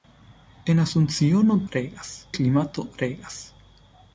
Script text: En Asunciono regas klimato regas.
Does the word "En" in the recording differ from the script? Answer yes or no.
no